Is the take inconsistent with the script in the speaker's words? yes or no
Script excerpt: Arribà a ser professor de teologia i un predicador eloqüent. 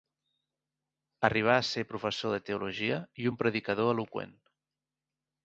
no